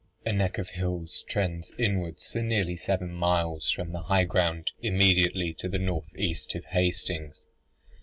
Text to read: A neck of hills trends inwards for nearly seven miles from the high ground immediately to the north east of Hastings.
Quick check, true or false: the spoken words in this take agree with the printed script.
true